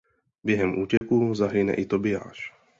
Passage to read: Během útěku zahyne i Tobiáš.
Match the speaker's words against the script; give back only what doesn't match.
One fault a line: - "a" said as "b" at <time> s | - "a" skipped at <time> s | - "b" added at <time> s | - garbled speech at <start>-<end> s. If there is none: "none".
none